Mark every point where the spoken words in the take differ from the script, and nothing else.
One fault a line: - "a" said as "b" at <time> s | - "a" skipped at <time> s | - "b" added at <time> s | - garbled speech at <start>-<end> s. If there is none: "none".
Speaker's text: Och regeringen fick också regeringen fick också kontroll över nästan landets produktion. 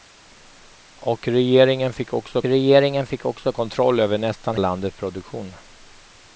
none